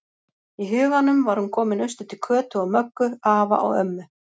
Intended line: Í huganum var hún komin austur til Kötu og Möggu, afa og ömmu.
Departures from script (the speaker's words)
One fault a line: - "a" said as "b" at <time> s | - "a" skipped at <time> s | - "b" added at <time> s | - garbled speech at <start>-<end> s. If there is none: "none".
none